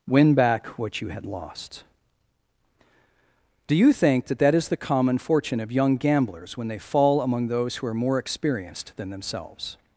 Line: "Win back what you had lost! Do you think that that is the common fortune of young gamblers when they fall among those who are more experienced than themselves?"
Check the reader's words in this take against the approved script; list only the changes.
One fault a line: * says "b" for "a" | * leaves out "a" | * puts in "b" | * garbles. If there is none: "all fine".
all fine